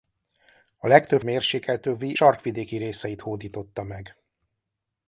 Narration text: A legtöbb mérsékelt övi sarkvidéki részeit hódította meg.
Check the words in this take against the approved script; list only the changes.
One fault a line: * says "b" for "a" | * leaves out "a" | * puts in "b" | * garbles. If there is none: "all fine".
all fine